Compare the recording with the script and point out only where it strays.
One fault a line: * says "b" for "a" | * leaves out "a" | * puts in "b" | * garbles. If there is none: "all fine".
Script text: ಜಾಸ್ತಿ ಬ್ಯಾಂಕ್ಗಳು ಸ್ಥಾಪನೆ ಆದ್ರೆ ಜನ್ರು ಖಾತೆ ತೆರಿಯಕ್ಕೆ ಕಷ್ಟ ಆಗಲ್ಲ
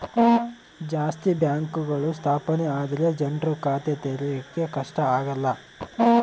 all fine